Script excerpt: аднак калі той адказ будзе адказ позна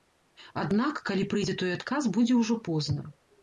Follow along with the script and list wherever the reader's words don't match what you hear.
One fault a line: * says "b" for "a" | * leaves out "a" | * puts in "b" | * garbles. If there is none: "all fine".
* puts in "прыйдзе"
* says "ўжо" for "адказ"